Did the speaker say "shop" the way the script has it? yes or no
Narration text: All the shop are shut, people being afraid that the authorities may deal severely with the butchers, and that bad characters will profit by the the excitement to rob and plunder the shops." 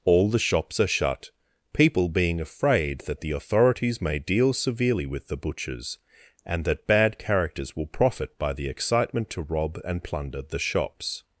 no